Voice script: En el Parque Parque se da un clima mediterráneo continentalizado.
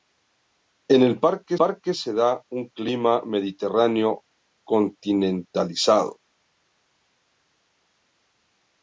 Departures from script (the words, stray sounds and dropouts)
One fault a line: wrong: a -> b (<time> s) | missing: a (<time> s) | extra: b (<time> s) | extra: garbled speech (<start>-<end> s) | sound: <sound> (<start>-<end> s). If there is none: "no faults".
no faults